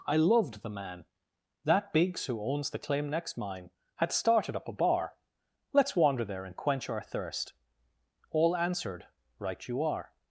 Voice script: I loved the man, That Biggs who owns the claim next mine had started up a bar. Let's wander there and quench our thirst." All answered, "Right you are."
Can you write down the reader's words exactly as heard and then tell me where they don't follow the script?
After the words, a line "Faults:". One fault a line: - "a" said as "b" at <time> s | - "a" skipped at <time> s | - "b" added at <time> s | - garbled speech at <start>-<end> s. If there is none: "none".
I loved the man, That Biggs who owns the claim next mine had started up a bar. Let's wander there and quench our thirst." All answered, "Right you are."
Faults:
none